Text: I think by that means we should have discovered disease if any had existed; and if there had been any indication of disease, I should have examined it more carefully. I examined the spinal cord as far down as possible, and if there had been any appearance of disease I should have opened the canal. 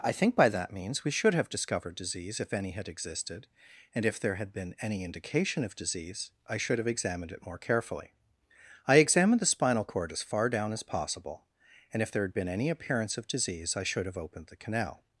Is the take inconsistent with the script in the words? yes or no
no